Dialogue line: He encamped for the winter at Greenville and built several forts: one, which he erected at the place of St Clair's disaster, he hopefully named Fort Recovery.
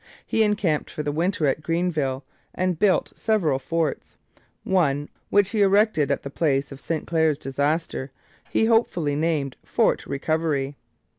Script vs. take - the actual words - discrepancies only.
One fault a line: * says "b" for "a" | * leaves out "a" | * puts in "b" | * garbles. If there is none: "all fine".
all fine